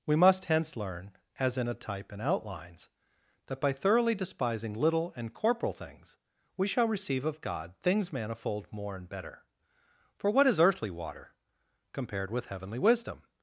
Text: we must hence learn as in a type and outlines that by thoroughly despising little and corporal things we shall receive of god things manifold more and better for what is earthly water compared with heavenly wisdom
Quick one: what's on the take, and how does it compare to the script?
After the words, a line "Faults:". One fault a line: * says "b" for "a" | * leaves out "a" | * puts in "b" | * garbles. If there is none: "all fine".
we must hence learn as in a type and outlines that by thoroughly despising little and corporal things we shall receive of god things manifold more and better for what is earthly water compared with heavenly wisdom
Faults:
all fine